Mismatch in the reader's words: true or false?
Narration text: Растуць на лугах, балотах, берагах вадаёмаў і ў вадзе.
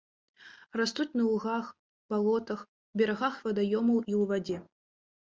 false